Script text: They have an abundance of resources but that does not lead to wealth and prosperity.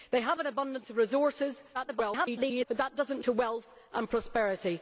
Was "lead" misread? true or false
true